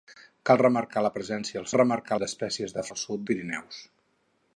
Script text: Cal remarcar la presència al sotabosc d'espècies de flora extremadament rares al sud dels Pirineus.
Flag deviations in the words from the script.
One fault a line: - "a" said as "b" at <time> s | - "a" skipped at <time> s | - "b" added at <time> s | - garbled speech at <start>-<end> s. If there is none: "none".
- "sotabosc" said as "remarcar" at 1.7 s
- "flora extremadament rares" skipped at 2.9 s
- "dels" skipped at 3.3 s